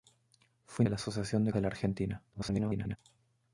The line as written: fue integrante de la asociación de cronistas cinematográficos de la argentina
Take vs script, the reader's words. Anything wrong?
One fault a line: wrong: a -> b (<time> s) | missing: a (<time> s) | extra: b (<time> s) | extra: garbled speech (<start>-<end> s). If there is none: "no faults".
missing: integrante (0.8 s)
missing: cronistas cinematográficos (1.5 s)
extra: garbled speech (2.3-3.0 s)